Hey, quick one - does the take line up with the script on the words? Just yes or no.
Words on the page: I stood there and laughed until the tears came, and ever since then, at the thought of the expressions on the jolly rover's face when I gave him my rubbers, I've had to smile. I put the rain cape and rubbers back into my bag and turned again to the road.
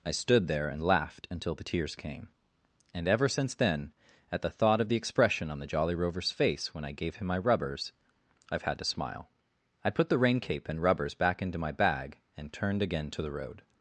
no